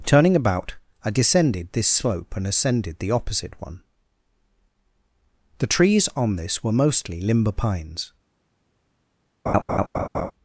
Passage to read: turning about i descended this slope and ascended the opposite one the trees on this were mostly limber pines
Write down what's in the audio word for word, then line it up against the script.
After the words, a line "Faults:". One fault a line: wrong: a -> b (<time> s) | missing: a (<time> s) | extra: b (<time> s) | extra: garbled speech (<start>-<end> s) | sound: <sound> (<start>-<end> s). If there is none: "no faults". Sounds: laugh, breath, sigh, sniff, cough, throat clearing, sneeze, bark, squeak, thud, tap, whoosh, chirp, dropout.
turning about i descended this slope and ascended the opposite one the trees on this were mostly limber pines
Faults:
sound: laugh (9.5-10.3 s)